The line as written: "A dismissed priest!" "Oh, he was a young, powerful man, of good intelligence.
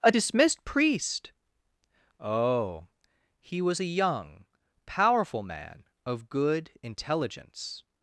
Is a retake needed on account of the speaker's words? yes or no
no